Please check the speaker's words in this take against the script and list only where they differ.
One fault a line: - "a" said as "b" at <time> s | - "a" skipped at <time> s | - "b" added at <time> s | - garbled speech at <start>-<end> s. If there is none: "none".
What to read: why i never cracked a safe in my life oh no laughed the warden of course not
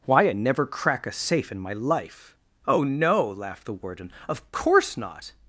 - "cracked" said as "crack" at 0.7 s